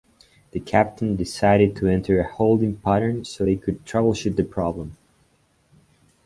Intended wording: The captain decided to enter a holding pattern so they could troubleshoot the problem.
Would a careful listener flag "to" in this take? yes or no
no